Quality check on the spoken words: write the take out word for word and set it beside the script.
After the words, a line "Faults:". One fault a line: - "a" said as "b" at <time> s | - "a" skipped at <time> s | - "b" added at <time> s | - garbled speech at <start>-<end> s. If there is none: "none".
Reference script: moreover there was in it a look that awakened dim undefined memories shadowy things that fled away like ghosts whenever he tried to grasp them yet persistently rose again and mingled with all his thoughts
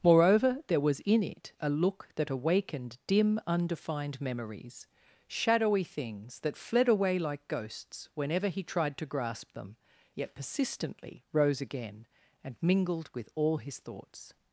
moreover there was in it a look that awakened dim undefined memories shadowy things that fled away like ghosts whenever he tried to grasp them yet persistently rose again and mingled with all his thoughts
Faults:
none